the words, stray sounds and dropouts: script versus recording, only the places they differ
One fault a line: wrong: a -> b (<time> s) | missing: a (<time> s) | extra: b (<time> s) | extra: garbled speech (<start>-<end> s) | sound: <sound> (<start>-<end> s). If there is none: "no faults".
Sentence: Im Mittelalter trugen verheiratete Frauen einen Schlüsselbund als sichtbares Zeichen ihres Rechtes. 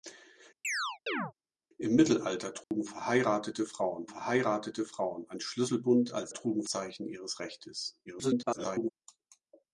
sound: chirp (0.6-1.3 s)
sound: dropout (2.6-2.7 s)
extra: verheiratete Frauen (4.0 s)
wrong: sichtbares -> trugen (6.3 s)
extra: garbled speech (8.1-8.9 s)